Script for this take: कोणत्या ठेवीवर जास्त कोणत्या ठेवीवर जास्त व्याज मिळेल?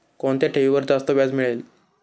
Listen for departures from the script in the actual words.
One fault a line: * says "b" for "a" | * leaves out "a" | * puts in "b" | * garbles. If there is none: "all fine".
* leaves out "कोणत्या ठेवीवर जास्त"